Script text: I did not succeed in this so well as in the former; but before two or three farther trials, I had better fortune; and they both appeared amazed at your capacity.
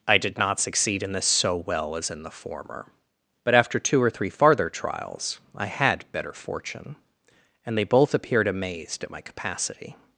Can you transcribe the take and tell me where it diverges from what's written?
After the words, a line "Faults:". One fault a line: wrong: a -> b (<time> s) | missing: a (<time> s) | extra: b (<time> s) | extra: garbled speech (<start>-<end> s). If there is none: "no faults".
I did not succeed in this so well as in the former; but after two or three farther trials, I had better fortune; and they both appeared amazed at my capacity.
Faults:
wrong: before -> after (3.5 s)
wrong: your -> my (9.1 s)